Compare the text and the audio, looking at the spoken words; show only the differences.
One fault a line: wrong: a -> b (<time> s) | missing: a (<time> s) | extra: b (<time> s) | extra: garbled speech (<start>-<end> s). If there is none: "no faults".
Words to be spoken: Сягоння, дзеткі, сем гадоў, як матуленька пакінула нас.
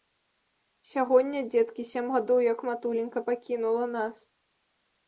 no faults